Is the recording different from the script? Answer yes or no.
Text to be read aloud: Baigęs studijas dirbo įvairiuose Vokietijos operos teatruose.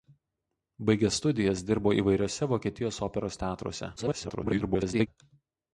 yes